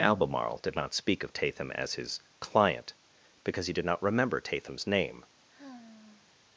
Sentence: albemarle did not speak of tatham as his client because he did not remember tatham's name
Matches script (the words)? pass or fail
pass